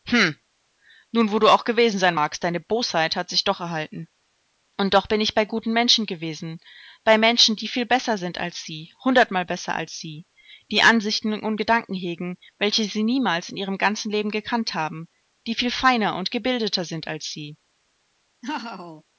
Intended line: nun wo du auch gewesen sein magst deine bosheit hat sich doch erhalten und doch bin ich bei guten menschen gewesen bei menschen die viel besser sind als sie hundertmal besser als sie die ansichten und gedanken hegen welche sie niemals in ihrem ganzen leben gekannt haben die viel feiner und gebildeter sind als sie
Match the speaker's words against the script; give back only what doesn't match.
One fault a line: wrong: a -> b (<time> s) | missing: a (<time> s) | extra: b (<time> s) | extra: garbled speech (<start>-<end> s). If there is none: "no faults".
no faults